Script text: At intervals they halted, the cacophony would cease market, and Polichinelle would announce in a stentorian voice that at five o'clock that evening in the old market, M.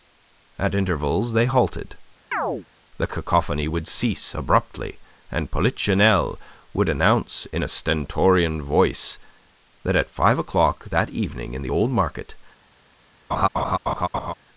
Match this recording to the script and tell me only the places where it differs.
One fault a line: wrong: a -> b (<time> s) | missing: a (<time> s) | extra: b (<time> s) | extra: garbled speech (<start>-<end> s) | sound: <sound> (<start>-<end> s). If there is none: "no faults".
sound: chirp (2.3-2.7 s)
wrong: market -> abruptly (4.4 s)
sound: laugh (13.3-14.3 s)